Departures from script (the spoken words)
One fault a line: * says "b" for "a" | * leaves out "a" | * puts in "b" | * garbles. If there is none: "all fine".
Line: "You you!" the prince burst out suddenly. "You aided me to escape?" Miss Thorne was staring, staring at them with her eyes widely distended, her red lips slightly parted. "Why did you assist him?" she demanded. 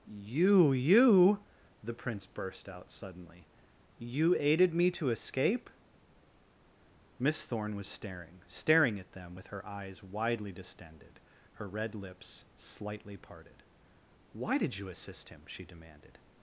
all fine